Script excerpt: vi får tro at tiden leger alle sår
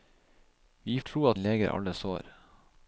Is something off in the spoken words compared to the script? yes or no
yes